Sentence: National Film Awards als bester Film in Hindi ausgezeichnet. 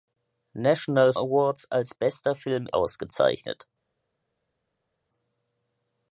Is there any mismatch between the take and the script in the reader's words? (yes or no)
yes